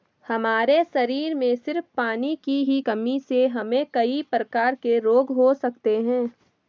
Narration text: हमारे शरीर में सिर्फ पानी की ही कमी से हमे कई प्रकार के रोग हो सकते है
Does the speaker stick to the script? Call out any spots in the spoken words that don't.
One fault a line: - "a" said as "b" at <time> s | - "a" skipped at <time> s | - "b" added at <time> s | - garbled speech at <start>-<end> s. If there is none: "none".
none